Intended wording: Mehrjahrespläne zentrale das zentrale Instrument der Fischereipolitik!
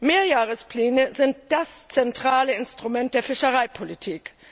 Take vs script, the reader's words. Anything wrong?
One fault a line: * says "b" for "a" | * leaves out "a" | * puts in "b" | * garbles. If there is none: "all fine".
* says "sind" for "zentrale"